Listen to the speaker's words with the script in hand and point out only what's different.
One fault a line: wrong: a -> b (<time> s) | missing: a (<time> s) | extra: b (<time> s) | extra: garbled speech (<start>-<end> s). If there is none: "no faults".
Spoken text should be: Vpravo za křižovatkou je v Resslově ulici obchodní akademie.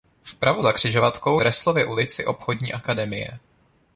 missing: je (1.4 s)